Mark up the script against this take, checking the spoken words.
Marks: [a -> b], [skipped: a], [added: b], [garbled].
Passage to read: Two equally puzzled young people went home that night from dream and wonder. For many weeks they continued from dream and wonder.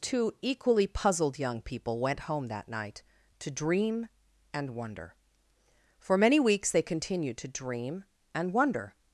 Two equally puzzled young people went home that night [from -> to] dream and wonder. For many weeks they continued [from -> to] dream and wonder.